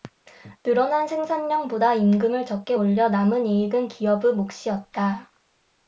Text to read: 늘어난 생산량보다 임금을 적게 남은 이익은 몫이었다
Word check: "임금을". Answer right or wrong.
right